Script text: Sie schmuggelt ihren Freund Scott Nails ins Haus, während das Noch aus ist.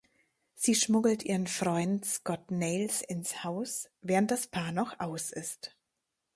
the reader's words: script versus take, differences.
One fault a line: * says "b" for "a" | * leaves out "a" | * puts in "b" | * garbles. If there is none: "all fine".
* puts in "Paar"